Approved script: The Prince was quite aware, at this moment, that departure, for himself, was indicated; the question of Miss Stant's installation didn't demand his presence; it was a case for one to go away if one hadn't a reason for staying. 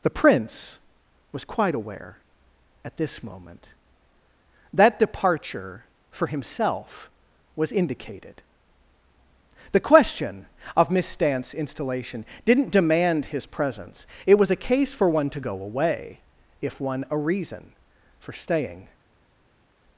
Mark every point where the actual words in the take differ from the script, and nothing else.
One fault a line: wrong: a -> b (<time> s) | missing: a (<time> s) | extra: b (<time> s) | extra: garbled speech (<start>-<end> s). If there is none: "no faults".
missing: hadn't (17.1 s)